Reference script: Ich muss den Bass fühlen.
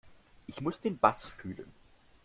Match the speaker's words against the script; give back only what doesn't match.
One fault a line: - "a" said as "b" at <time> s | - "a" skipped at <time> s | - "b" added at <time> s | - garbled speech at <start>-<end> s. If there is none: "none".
none